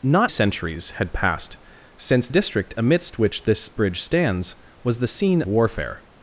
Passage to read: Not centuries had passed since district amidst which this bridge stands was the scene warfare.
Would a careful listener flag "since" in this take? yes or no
no